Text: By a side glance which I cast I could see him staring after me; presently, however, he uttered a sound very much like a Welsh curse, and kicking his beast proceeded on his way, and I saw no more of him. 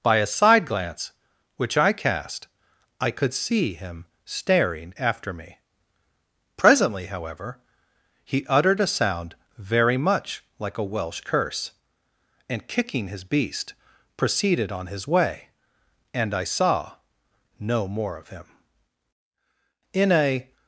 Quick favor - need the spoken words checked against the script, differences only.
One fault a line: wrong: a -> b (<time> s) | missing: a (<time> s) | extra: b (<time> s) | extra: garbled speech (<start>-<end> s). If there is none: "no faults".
extra: In a (19.9 s)